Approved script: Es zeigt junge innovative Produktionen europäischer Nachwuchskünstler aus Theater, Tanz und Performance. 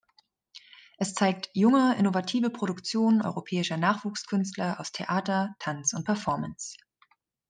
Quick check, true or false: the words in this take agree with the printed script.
true